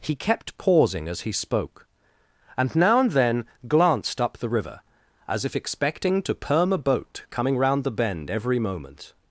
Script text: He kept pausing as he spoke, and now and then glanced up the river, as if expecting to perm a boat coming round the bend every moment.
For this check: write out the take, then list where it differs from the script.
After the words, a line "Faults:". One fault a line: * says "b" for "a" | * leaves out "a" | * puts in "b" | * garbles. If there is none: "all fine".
He kept pausing as he spoke, and now and then glanced up the river, as if expecting to perm a boat coming round the bend every moment.
Faults:
all fine